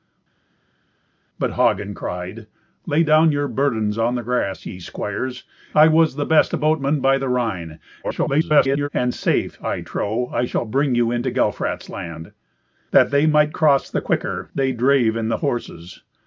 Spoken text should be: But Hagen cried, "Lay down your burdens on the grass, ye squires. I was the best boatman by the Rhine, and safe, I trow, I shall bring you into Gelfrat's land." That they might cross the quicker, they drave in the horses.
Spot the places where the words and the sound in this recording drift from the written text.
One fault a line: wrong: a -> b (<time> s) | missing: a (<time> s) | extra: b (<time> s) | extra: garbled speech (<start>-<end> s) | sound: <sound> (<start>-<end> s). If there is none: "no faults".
extra: garbled speech (8.0-8.9 s)